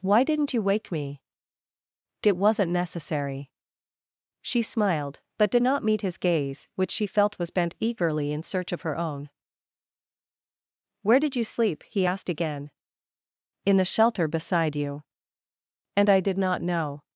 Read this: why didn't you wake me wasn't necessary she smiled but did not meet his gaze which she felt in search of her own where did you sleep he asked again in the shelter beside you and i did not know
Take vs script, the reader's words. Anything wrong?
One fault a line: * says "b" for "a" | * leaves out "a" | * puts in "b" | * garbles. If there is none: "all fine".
* puts in "it"
* puts in "was bent eagerly"